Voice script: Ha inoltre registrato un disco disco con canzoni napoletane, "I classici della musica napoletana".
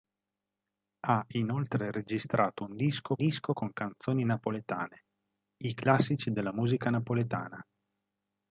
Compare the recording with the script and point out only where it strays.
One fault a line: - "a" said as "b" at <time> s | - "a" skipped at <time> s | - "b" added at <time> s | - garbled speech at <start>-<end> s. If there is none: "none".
none